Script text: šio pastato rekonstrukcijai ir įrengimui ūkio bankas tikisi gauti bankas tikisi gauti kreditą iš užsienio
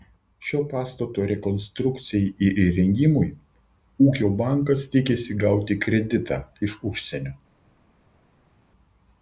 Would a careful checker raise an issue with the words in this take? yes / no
yes